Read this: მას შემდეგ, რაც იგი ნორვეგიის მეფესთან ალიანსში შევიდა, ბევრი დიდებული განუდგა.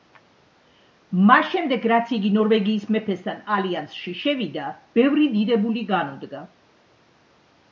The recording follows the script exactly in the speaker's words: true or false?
true